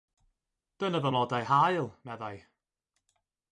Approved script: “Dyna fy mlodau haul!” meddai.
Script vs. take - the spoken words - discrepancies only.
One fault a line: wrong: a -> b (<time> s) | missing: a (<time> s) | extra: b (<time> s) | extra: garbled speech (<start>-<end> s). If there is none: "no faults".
no faults